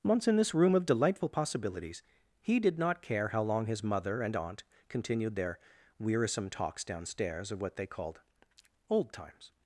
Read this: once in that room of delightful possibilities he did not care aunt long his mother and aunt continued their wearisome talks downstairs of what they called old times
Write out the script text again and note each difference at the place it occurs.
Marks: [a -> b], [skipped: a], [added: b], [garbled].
once in [that -> this] room of delightful possibilities he did not care [aunt -> how] long his mother and aunt continued their wearisome talks downstairs of what they called old times